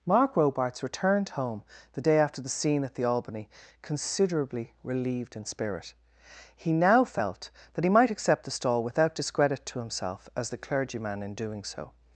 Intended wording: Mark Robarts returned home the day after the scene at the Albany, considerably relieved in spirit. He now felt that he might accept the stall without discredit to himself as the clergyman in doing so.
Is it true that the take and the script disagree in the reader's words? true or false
false